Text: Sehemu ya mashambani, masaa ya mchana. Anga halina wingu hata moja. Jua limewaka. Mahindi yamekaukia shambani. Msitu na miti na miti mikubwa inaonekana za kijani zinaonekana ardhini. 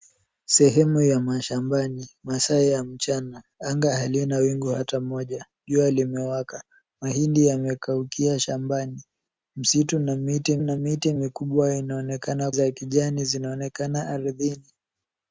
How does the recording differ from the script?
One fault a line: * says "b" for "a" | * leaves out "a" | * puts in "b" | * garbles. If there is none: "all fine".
all fine